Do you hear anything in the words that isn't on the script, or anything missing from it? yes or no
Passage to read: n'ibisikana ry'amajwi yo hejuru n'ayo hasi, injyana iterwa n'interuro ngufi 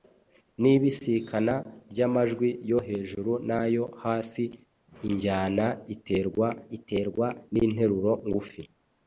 yes